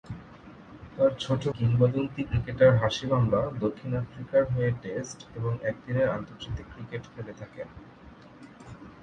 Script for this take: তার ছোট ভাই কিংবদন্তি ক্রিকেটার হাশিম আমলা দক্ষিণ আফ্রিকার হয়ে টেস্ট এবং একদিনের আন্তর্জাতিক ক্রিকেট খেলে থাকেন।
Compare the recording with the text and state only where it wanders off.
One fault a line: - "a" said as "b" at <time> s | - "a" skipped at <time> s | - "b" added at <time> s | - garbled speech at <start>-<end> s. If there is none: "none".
- "ভাই" skipped at 1.4 s